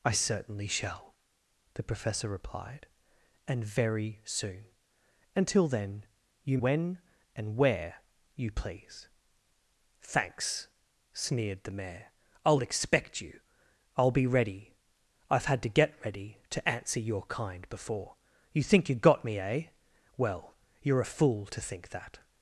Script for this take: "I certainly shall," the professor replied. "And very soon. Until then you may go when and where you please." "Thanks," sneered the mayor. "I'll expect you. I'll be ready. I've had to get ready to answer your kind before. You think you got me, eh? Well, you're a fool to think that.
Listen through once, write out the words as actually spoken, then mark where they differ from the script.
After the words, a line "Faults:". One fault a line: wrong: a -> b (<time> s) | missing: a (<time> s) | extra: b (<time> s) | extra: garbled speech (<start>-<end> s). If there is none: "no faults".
"I certainly shall," the professor replied. "And very soon. Until then you when and where you please." "Thanks," sneered the mayor. "I'll expect you. I'll be ready. I've had to get ready to answer your kind before. You think you got me, eh? Well, you're a fool to think that.
Faults:
missing: may go (6.6 s)